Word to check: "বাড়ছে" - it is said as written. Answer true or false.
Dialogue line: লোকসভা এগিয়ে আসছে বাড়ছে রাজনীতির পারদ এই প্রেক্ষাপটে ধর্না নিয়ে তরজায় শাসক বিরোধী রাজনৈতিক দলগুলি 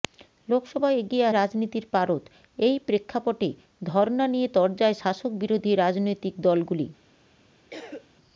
false